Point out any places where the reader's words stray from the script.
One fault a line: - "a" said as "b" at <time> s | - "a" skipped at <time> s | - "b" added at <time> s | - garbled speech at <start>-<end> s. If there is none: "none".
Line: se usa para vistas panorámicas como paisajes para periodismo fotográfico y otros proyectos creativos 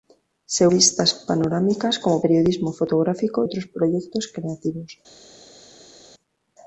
- "usa para" skipped at 0.7 s
- "paisajes para" skipped at 2.2 s
- "y" skipped at 3.4 s